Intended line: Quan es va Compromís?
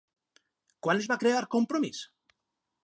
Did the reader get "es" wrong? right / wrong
right